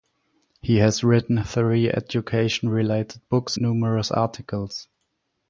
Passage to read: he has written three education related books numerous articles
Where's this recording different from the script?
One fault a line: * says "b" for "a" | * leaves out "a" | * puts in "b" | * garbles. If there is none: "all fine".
all fine